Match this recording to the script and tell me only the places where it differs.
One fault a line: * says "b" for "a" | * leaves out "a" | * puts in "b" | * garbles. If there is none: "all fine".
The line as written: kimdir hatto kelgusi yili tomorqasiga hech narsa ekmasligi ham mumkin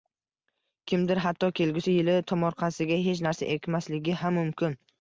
all fine